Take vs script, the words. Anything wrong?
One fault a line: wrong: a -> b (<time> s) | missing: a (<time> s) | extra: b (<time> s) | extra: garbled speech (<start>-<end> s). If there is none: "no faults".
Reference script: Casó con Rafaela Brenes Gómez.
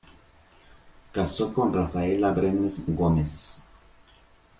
no faults